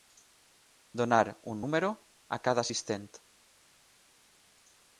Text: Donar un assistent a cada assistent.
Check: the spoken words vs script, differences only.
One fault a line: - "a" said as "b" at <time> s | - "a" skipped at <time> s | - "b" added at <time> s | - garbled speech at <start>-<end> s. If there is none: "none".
- "assistent" said as "número" at 1.6 s